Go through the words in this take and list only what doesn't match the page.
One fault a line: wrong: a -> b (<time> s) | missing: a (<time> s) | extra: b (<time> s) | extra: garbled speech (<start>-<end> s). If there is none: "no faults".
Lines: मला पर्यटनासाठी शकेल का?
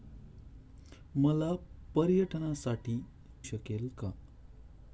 no faults